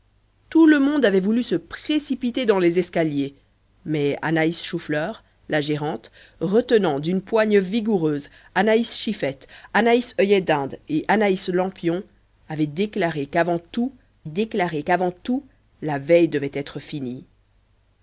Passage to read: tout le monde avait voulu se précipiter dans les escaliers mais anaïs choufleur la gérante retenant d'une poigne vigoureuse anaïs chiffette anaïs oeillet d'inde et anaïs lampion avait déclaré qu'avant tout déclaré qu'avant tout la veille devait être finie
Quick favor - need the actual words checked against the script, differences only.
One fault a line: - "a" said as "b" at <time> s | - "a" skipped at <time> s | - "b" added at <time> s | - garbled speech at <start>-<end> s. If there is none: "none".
none